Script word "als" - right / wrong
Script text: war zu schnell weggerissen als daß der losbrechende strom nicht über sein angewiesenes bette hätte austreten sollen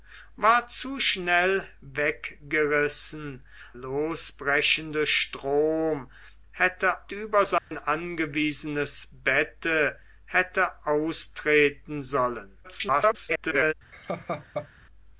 wrong